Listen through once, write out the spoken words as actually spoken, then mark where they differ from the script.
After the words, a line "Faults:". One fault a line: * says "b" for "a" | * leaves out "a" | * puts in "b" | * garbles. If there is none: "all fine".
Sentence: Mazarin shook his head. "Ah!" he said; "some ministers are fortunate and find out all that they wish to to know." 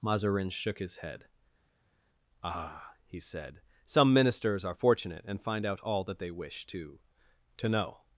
Mazarin shook his head. "Ah!" he said; "some ministers are fortunate and find out all that they wish to to know."
Faults:
all fine